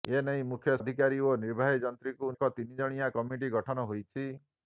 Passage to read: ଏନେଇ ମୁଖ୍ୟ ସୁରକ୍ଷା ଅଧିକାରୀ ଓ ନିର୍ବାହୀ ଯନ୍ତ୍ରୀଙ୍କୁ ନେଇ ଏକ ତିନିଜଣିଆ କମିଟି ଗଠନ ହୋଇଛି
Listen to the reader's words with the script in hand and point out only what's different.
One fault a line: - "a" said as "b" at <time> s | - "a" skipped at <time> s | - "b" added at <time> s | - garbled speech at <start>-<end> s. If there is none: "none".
- "ସୁରକ୍ଷା" skipped at 0.8 s
- "ନେଇ" skipped at 2.3 s